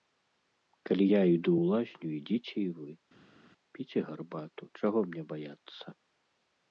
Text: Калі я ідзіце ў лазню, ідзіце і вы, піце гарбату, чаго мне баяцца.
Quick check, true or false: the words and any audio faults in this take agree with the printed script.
false